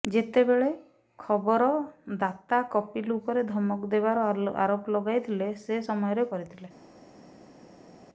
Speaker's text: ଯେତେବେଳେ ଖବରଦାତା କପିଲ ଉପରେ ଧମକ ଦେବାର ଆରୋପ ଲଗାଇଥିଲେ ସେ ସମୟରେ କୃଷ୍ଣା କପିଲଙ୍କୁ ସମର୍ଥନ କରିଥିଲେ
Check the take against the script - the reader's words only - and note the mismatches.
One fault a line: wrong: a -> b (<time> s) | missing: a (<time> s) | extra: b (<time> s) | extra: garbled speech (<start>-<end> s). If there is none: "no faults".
missing: କୃଷ୍ଣା କପିଲଙ୍କୁ ସମର୍ଥନ (6.3 s)